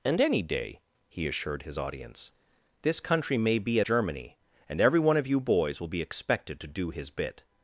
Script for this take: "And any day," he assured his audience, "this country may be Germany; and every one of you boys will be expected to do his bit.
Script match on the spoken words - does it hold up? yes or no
yes